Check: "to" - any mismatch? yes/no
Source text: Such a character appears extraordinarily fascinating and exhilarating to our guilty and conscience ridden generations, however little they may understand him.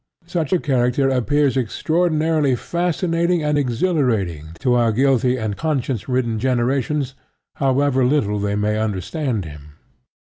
no